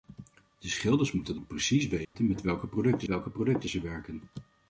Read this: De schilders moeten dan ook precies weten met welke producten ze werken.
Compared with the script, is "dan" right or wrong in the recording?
wrong